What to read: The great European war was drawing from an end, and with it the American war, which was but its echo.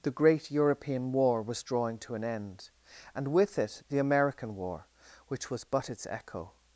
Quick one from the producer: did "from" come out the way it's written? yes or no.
no